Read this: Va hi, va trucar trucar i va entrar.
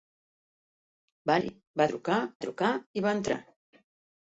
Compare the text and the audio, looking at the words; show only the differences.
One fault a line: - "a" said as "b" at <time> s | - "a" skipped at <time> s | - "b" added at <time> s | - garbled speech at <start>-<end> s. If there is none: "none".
none